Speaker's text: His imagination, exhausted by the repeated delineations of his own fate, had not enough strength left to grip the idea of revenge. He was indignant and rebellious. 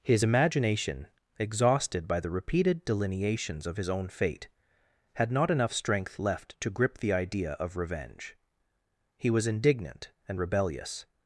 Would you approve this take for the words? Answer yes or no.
yes